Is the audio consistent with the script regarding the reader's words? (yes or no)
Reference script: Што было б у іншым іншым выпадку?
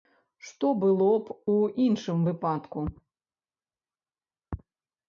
no